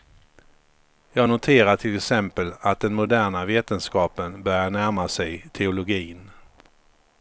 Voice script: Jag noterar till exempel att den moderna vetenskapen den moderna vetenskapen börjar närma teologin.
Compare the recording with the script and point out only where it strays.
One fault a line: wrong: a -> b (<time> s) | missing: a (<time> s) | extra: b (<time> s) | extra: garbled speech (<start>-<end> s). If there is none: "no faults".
missing: den moderna vetenskapen (4.4 s)
extra: sig (5.1 s)